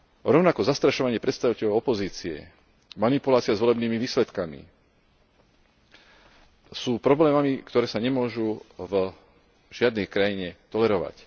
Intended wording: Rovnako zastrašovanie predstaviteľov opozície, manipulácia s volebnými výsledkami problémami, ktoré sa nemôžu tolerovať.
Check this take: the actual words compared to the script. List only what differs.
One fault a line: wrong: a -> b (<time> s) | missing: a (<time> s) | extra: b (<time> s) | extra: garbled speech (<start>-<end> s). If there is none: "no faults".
extra: sú (6.7 s)
extra: v žiadnej krajine (8.8 s)